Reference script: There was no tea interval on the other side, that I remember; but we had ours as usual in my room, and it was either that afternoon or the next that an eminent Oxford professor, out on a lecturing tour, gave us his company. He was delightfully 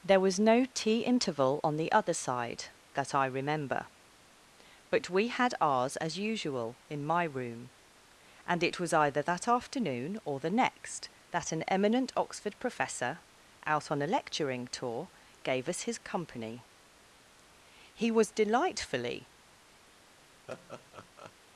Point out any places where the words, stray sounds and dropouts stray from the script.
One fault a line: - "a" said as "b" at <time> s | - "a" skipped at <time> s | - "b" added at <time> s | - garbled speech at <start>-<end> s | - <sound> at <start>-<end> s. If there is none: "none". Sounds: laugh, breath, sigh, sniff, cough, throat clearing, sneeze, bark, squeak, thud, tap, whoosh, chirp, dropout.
- laugh at 20.5-21.3 s